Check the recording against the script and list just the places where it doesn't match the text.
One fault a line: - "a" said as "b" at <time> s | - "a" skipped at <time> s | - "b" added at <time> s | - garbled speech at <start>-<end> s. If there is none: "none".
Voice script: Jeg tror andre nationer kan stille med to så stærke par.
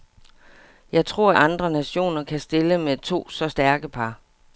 none